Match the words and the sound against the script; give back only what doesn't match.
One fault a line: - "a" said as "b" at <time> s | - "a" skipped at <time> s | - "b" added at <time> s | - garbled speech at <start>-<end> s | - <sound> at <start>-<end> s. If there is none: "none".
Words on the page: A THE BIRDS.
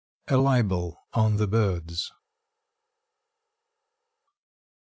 - "LIBEL ON" added at 0.3 s